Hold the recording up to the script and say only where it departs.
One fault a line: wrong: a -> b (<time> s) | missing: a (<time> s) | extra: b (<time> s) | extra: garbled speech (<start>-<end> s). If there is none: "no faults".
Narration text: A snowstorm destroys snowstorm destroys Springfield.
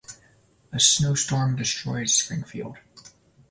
missing: snowstorm destroys (2.1 s)